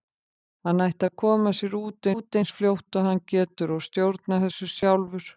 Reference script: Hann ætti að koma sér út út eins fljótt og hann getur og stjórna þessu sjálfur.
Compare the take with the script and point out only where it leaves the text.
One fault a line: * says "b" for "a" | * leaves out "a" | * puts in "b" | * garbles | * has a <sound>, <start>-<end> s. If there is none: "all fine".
all fine